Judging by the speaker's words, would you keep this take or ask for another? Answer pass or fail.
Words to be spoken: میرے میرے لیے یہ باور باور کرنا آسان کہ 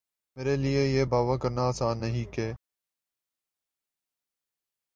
fail